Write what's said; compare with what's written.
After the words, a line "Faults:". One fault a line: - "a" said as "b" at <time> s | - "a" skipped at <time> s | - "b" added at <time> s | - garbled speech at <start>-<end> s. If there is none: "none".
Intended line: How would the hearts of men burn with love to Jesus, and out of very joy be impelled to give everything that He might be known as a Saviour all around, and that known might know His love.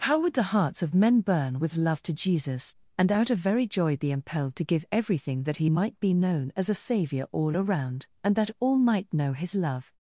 How would the hearts of men burn with love to Jesus, and out of very joy be impelled to give everything that He might be known as a Saviour all around, and that all might know His love.
Faults:
- "known" said as "all" at 8.6 s